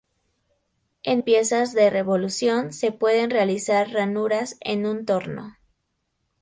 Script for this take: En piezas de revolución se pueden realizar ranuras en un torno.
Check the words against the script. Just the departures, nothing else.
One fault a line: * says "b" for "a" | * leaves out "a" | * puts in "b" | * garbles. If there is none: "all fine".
all fine